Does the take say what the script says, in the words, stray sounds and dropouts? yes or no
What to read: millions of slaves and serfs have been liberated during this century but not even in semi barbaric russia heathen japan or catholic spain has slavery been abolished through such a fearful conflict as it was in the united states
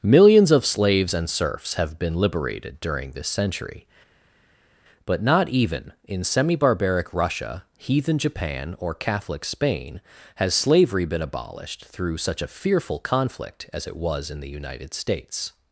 yes